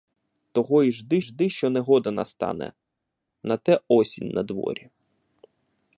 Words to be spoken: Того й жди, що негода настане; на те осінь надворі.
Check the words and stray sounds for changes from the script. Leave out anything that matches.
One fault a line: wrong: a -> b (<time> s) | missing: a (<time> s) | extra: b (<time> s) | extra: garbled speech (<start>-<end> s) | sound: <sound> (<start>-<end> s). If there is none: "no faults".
extra: жди (1.2 s)